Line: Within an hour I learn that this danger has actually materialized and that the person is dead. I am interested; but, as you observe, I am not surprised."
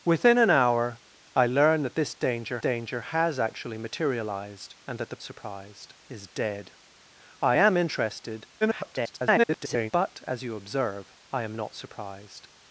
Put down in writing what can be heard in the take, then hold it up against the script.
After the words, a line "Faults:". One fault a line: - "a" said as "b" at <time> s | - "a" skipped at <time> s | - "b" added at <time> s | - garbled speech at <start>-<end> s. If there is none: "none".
Within an hour I learn that this danger danger has actually materialized and that the surprised is dead. I am interested; [garbled] but, as you observe, I am not surprised."
Faults:
- "danger" added at 2.6 s
- "person" said as "surprised" at 5.2 s
- garbled speech at 8.6-9.9 s